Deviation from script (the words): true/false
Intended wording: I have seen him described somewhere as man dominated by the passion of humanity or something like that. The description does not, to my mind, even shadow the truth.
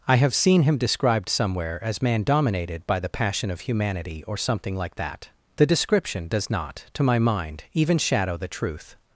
false